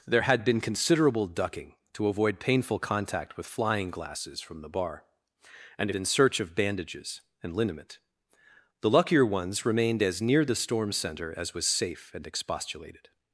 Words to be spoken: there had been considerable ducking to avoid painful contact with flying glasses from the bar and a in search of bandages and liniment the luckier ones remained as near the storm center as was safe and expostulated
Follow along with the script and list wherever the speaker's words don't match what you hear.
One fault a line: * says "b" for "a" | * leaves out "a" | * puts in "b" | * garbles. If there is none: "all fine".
all fine